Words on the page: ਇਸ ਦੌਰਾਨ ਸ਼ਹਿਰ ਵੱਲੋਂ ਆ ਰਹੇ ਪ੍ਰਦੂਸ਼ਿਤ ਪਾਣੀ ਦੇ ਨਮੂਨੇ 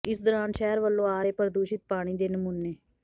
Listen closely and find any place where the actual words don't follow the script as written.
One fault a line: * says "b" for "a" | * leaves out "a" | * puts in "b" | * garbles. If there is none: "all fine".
all fine